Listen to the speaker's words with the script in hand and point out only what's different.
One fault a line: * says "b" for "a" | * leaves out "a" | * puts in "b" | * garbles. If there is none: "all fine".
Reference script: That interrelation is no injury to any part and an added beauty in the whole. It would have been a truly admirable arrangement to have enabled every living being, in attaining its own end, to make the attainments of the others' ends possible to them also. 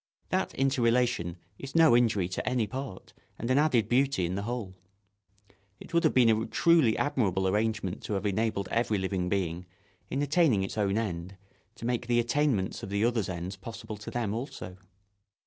all fine